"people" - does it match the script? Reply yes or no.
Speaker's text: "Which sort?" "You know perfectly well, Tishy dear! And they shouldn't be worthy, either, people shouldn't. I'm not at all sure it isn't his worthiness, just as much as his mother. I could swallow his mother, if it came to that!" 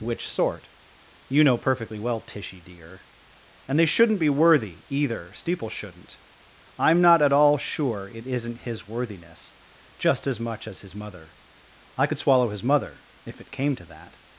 no